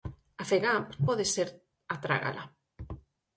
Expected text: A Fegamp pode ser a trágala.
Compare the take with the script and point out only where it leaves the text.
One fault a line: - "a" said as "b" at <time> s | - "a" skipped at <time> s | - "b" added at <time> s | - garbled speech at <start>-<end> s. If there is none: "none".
none